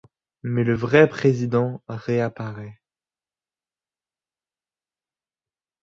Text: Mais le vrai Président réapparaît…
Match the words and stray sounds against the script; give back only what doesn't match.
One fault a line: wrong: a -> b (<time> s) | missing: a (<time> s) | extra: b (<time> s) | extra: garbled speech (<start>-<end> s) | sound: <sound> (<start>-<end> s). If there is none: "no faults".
no faults